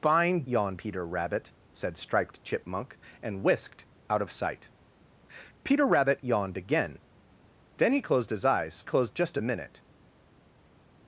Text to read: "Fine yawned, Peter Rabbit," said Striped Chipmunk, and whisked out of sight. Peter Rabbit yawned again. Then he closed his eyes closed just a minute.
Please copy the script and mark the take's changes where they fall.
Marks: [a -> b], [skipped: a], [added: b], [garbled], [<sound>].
"Fine yawned, Peter Rabbit," said Striped Chipmunk, and whisked out of sight. Peter Rabbit yawned again. Then he closed his eyes closed just a minute.